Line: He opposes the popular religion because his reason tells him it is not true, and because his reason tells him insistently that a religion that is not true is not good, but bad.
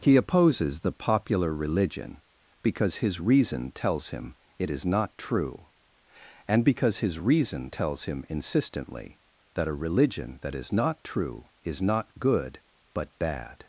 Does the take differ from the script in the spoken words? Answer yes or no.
no